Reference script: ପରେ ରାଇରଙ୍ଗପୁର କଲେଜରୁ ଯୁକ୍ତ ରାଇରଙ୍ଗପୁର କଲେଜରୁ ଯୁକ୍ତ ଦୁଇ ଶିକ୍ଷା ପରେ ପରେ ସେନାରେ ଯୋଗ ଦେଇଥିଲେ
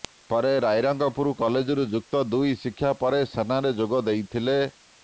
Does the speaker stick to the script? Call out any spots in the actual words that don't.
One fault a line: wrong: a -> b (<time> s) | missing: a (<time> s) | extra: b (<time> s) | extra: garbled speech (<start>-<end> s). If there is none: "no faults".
missing: ରାଇରଙ୍ଗପୁର କଲେଜରୁ ଯୁକ୍ତ (2.2 s)
missing: ପରେ (3.2 s)